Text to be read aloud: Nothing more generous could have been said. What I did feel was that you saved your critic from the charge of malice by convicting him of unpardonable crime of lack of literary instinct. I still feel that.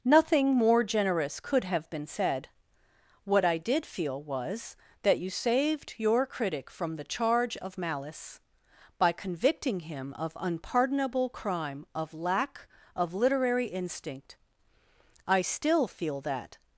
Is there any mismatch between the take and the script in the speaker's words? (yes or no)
no